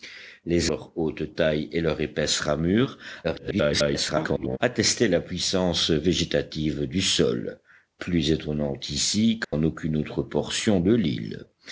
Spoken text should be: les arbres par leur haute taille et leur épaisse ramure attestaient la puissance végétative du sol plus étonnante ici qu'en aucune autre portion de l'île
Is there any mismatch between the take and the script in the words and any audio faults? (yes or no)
yes